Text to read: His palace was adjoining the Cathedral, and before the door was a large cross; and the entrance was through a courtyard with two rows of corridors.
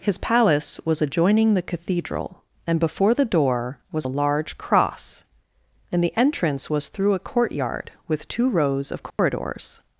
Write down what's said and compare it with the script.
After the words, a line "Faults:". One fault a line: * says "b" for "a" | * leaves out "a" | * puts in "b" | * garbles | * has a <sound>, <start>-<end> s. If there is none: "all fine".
His palace was adjoining the Cathedral, and before the door was a large cross; and the entrance was through a courtyard with two rows of corridors.
Faults:
* has a dropout, 9.1-9.2 s